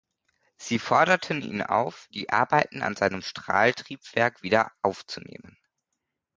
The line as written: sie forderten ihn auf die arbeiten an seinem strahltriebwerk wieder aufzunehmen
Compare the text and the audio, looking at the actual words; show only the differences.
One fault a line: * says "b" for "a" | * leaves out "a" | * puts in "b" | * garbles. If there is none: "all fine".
all fine